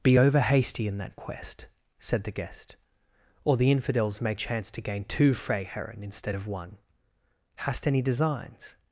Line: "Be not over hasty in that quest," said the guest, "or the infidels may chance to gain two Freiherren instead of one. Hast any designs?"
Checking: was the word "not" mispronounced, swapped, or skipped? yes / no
yes